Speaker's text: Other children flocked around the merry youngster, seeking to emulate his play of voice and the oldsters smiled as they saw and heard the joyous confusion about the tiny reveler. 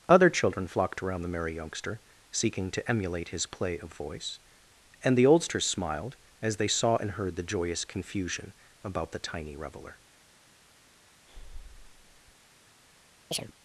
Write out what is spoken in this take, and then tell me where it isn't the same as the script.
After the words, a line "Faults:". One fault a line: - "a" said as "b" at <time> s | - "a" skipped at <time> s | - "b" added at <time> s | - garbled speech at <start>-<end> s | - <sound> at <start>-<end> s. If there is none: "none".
Other children flocked around the merry youngster, seeking to emulate his play of voice and the oldsters smiled as they saw and heard the joyous confusion about the tiny reveler.
Faults:
- breath at 11.3-12.4 s
- chirp at 13.3-13.5 s